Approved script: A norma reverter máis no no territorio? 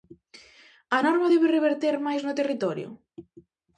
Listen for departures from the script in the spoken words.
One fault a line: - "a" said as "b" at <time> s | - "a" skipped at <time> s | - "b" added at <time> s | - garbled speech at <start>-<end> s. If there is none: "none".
- "debe" added at 1.3 s
- "no" skipped at 2.4 s